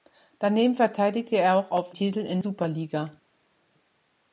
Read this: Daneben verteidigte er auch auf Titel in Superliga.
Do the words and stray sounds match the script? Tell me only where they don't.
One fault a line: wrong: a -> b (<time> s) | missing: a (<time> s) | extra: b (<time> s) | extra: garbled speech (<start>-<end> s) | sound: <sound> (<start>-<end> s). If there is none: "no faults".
no faults